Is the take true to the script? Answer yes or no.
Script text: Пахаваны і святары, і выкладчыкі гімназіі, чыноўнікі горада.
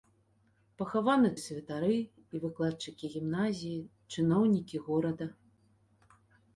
yes